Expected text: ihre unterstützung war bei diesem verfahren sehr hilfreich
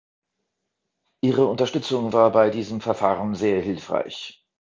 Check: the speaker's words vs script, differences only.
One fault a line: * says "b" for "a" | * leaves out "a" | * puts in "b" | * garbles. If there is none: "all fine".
all fine